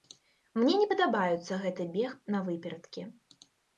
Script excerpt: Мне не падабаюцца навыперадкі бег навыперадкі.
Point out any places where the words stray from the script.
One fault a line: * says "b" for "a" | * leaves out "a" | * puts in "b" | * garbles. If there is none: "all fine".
* says "гэты" for "навыперадкі"